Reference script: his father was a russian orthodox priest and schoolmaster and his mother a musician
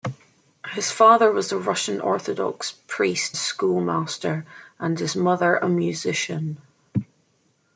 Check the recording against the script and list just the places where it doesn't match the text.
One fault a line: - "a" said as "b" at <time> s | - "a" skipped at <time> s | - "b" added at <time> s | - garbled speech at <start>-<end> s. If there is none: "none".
- "and" skipped at 3.4 s